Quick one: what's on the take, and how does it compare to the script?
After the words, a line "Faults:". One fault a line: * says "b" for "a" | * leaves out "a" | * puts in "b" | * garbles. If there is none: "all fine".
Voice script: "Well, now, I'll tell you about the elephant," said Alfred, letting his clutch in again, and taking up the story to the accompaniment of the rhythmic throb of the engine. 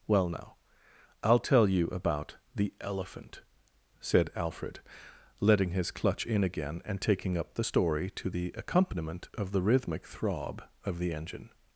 "Well, now, I'll tell you about the elephant," said Alfred, letting his clutch in again, and taking up the story to the accompaniment of the rhythmic throb of the engine.
Faults:
all fine